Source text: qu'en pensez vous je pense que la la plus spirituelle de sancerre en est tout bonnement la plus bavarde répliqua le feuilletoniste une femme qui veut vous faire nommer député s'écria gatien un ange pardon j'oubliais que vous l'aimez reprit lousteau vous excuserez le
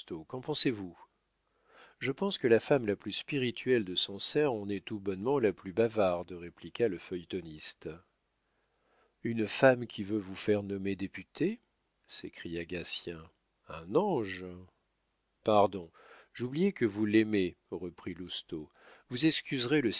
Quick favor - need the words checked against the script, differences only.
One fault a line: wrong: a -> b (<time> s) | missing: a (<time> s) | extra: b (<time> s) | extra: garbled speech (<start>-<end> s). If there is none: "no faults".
extra: femme (2.6 s)